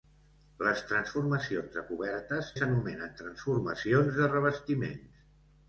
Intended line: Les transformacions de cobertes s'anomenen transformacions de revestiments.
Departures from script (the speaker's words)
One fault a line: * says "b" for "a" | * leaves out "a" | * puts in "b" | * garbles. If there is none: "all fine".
all fine